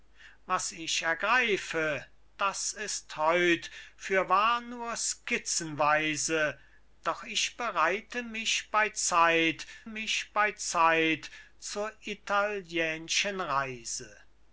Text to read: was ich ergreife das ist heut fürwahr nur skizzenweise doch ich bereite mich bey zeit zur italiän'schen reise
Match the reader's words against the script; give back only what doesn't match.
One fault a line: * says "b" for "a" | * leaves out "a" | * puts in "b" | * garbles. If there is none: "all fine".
* puts in "mich bey zeit"